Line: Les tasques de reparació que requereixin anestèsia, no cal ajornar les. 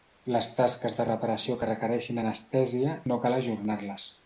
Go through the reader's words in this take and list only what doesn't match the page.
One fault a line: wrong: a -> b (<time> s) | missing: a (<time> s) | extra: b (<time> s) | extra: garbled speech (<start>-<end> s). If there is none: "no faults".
no faults